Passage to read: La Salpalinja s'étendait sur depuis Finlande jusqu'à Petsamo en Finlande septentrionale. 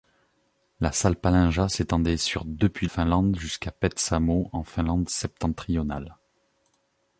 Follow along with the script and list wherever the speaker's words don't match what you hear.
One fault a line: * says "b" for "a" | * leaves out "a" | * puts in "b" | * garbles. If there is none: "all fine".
all fine